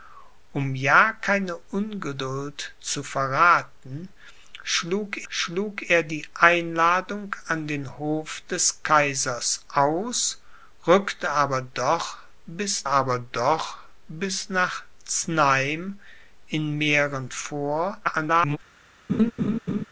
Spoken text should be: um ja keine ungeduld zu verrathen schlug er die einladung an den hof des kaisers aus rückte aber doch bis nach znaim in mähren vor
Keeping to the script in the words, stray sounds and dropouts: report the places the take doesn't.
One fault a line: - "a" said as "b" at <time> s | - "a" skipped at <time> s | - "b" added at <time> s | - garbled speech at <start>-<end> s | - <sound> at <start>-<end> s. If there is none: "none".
- "schlug" added at 5.3 s
- "aber doch bis" added at 12.8 s
- garbled speech at 18.0-18.6 s
- laugh at 19.1-19.8 s